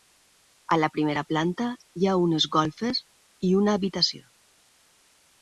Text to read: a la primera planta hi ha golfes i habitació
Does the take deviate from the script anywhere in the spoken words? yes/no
yes